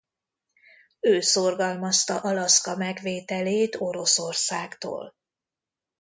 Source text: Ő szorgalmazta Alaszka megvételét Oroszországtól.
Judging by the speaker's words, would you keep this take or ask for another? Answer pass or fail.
pass